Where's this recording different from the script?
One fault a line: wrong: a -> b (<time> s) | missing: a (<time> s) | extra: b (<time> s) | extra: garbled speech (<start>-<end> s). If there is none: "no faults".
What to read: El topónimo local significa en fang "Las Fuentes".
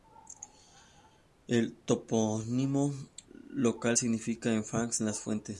no faults